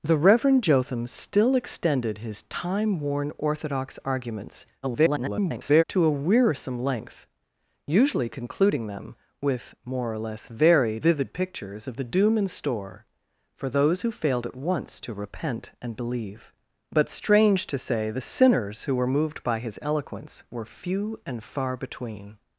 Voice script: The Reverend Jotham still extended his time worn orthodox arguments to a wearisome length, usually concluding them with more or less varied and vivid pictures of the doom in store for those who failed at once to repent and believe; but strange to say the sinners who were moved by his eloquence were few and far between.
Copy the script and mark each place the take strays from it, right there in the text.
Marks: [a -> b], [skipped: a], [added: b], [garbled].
The Reverend Jotham still extended his time worn orthodox arguments [garbled] to a wearisome length, usually concluding them with more or less varied [skipped: and] vivid pictures of the doom in store for those who failed at once to repent and believe; but strange to say the sinners who were moved by his eloquence were few and far between.